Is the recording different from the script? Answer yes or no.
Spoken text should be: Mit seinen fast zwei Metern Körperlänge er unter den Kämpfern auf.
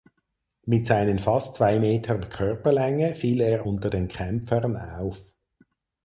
yes